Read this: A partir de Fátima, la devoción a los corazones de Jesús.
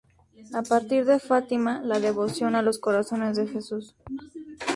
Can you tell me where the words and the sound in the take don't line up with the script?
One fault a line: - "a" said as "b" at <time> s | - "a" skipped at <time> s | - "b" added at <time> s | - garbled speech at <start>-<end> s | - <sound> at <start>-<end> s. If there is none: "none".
none